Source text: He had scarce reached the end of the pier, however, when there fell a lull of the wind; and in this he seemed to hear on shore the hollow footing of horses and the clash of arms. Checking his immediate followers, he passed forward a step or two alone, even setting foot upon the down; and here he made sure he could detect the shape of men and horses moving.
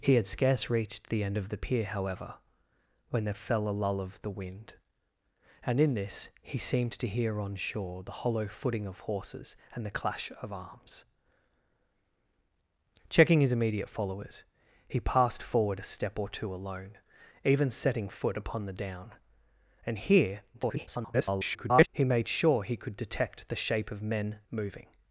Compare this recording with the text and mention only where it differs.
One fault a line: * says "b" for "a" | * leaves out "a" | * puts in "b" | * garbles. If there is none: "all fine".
* garbles
* leaves out "and horses"